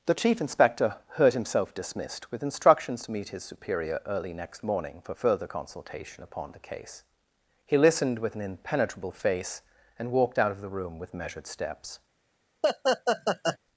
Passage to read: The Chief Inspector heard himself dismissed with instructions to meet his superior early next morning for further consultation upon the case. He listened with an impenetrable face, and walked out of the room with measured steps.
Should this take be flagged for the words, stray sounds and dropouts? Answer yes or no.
yes